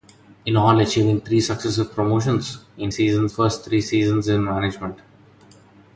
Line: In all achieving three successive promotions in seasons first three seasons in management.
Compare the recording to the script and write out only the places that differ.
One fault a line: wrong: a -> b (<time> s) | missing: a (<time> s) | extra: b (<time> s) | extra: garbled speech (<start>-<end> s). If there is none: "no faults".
no faults